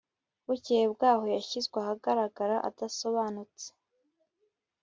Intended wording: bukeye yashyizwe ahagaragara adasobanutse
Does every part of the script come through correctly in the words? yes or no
no